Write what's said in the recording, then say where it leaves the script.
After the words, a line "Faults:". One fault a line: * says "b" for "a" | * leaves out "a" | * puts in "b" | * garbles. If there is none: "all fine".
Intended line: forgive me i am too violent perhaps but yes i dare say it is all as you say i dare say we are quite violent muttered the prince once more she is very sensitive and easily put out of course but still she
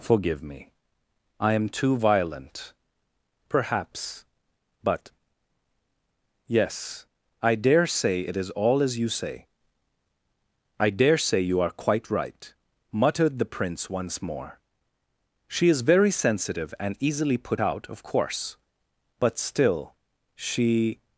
forgive me i am too violent perhaps but yes i dare say it is all as you say i dare say you are quite right muttered the prince once more she is very sensitive and easily put out of course but still she
Faults:
* says "you" for "we"
* says "right" for "violent"